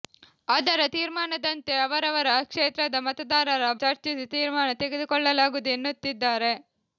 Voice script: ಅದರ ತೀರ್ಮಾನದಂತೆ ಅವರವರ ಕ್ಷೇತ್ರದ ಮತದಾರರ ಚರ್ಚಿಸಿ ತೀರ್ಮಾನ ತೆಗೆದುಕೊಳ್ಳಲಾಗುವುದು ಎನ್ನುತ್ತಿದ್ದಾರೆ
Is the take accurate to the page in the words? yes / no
yes